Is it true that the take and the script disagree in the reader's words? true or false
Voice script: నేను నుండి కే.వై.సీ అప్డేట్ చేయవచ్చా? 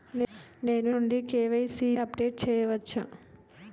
false